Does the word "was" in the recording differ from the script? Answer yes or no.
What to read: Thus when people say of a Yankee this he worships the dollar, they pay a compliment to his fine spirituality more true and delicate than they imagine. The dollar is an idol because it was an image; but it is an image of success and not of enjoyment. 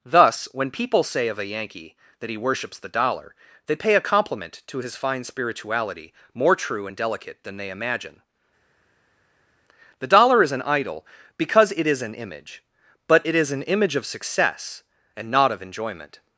yes